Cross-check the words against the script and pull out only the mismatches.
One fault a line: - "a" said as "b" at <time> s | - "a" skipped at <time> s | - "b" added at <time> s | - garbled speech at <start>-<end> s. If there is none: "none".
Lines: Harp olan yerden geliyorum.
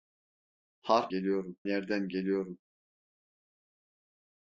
- "olan" said as "geliyorum" at 1.1 s